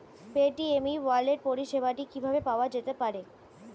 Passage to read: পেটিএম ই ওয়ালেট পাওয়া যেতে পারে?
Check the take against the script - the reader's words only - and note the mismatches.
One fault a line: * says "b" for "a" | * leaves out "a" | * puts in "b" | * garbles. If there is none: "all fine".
* puts in "পরিষেবাটি কিভাবে"